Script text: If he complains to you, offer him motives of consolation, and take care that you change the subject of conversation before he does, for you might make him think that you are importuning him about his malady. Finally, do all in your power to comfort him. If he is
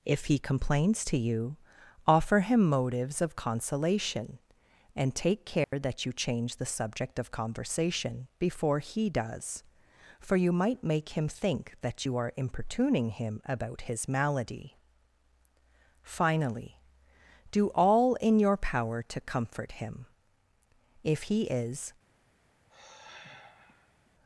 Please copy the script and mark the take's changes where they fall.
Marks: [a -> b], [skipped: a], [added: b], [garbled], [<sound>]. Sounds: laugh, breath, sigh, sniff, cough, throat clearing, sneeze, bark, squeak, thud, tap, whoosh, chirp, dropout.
If he complains to you, offer him motives of consolation, and take care [dropout] that you change the subject of conversation before he does, for you might make him think that you are importuning him about his malady. Finally, do all in your power to comfort him. If he is [sigh]